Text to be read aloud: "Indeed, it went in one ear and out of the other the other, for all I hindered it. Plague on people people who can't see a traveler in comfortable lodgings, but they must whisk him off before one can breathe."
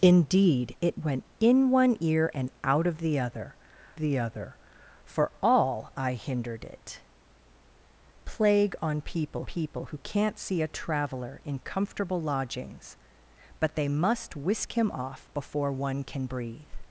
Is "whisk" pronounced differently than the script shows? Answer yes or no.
no